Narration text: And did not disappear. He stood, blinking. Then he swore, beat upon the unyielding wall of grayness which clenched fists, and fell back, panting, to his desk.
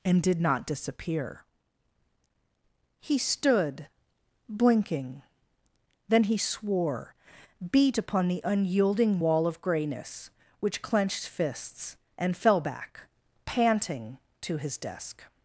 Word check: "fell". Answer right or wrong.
right